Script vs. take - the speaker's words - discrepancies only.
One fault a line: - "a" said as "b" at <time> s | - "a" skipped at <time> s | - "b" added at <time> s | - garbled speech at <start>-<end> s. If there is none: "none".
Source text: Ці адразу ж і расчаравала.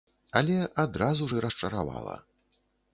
- "Ці" said as "Але" at 0.4 s